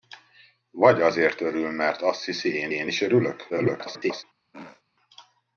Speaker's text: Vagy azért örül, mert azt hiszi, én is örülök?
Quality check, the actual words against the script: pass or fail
fail